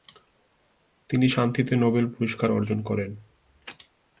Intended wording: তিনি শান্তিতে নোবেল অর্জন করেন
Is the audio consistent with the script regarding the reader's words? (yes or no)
no